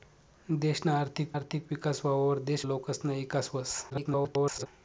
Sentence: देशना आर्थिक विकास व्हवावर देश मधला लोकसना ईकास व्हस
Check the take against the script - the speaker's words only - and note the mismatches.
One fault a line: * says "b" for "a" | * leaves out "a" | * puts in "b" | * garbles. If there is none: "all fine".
* puts in "आर्थिक"
* leaves out "मधला"
* garbles